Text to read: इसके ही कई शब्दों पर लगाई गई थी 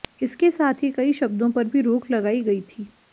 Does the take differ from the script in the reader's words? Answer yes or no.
yes